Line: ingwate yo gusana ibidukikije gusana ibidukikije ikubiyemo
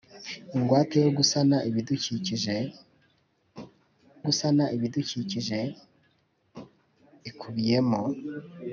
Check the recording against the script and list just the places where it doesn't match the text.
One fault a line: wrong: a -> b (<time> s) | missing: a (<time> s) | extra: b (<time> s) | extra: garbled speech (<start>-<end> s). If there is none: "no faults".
no faults